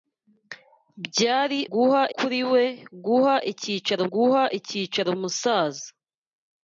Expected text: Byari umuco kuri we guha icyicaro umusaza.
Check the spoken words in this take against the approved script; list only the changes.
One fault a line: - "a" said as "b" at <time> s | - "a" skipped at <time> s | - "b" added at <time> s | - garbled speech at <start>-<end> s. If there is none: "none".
- "umuco" said as "guha" at 1.7 s
- "guha icyicaro" added at 4.1 s